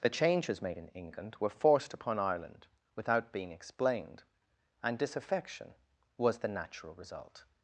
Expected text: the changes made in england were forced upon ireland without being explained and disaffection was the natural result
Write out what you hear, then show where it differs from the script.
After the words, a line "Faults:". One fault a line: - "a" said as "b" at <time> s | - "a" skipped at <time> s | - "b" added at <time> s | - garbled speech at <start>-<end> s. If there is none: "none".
the changes made in england were forced upon ireland without being explained and disaffection was the natural result
Faults:
none